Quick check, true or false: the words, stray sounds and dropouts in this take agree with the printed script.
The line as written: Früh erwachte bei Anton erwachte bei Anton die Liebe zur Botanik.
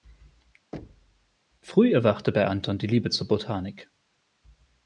false